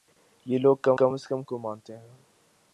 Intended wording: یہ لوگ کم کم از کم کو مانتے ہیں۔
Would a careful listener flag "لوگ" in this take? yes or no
no